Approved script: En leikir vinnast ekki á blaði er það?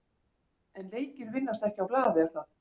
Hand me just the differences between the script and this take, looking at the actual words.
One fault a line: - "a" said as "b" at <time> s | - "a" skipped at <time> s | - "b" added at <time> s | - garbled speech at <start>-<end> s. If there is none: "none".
none